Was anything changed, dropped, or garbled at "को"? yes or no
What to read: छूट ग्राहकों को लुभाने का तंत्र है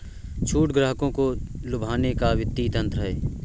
no